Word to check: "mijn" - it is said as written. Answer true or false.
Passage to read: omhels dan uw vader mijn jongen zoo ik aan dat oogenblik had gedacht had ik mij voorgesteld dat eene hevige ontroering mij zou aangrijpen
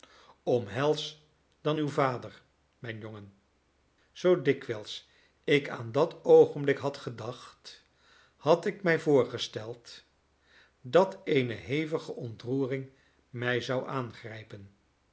true